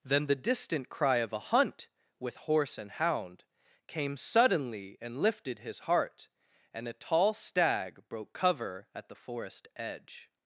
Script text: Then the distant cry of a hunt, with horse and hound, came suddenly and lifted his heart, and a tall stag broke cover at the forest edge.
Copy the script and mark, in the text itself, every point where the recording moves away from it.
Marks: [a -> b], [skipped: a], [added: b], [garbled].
Then the distant cry of a hunt, with horse and hound, came suddenly and lifted his heart, and a tall stag broke cover at the forest edge.